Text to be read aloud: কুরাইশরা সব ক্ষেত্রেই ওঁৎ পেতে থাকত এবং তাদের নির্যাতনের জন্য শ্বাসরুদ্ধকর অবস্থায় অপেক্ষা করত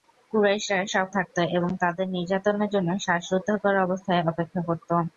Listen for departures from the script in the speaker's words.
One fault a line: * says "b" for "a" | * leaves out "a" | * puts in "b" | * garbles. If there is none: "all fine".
* leaves out "ক্ষেত্রেই ওঁৎ পেতে"